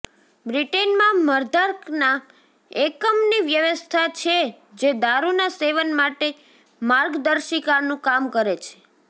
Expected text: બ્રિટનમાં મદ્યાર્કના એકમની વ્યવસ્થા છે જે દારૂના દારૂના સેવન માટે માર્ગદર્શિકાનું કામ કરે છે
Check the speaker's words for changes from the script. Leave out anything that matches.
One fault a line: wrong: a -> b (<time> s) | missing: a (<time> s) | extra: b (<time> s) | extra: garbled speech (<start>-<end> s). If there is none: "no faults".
missing: દારૂના (5.5 s)